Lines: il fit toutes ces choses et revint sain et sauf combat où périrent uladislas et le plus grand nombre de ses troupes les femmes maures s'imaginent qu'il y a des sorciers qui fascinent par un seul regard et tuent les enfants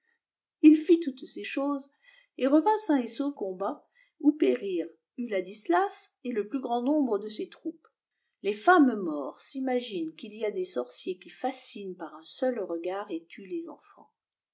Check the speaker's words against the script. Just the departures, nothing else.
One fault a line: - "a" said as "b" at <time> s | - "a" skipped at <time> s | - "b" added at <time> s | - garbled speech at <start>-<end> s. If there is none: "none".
none